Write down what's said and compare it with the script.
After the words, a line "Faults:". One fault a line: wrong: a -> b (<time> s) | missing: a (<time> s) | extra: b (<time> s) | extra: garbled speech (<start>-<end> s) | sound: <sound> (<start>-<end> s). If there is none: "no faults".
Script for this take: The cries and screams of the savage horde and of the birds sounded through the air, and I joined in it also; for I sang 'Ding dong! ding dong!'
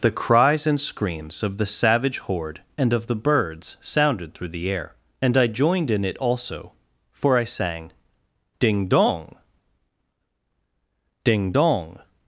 The cries and screams of the savage horde and of the birds sounded through the air, and I joined in it also; for I sang 'Ding dong! ding dong!'
Faults:
no faults